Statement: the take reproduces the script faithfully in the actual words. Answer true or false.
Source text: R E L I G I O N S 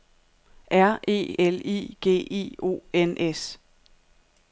true